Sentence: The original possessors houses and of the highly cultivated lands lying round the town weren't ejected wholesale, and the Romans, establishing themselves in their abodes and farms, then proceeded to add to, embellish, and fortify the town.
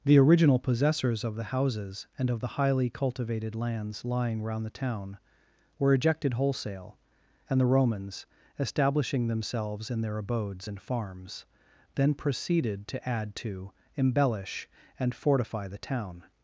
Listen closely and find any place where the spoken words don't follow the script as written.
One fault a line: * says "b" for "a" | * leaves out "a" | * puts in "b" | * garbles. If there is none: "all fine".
* puts in "of the"
* says "were" for "weren't"